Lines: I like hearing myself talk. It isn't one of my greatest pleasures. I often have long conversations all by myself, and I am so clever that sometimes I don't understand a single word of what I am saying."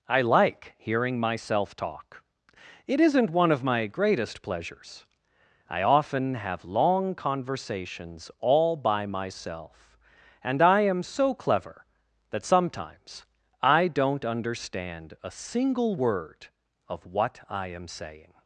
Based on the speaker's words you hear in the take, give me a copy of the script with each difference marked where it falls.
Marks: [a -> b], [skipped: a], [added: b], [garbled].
I like hearing myself talk. It isn't one of my greatest pleasures. I often have long conversations all by myself, and I am so clever that sometimes I don't understand a single word of what I am saying."